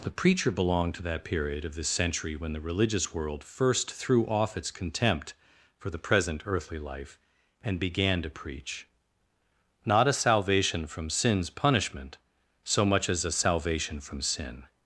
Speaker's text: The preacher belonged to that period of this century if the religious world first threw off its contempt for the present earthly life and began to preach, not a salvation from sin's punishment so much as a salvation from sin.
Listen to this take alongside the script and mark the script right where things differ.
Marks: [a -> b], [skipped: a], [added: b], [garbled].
The preacher belonged to that period of this century [if -> when] the religious world first threw off its contempt for the present earthly life and began to preach, not a salvation from sin's punishment so much as a salvation from sin.